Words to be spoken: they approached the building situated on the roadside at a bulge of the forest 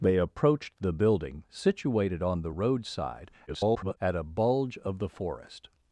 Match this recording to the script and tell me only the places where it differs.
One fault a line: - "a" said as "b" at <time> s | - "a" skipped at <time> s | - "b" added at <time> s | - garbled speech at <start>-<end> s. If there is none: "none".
- garbled speech at 3.5-4.0 s